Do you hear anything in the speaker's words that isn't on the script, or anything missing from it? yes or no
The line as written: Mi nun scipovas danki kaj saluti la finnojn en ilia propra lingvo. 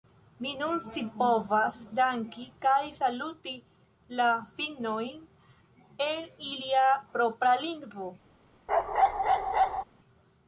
no